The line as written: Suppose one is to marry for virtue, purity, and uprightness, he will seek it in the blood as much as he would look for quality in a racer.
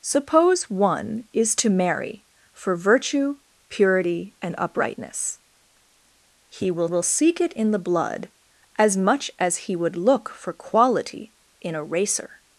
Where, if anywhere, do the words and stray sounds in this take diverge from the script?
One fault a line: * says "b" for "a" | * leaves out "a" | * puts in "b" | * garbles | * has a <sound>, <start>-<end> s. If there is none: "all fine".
* puts in "will"